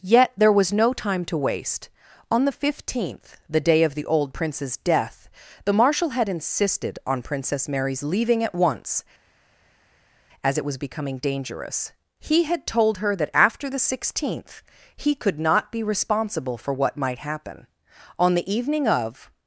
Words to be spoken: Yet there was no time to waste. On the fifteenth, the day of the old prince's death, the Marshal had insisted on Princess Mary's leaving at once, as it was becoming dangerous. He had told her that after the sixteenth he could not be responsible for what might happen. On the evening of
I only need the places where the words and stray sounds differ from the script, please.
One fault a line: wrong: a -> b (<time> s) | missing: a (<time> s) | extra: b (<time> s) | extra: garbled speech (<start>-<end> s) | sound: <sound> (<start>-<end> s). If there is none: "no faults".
no faults